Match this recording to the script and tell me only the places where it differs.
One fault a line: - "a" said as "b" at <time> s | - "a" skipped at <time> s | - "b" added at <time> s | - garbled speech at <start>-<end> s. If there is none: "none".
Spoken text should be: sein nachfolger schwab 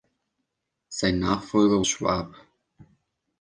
none